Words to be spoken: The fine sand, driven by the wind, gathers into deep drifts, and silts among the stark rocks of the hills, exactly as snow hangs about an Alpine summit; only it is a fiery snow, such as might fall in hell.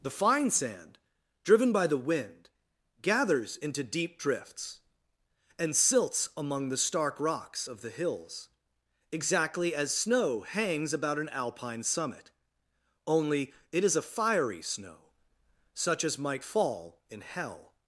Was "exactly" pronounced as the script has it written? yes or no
yes